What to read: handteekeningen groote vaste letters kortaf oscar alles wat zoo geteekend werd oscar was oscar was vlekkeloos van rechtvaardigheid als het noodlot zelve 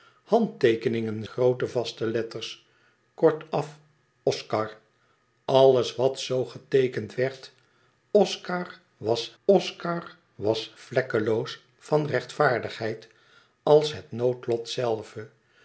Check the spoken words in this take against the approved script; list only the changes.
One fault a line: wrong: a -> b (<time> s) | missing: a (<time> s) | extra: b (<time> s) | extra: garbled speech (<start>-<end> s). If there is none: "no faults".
no faults